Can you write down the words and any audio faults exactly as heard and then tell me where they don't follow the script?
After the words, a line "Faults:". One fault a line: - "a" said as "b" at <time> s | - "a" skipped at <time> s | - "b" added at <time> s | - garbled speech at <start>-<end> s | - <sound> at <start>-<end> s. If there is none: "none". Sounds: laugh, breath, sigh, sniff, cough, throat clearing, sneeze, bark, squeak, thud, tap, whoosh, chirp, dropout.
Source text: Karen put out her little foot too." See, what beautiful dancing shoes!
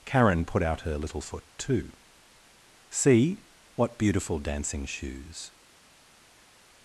Karen put out her little foot too." See, what beautiful dancing shoes!
Faults:
none